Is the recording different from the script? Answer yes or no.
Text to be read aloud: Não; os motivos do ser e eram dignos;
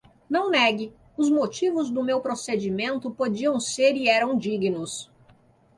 yes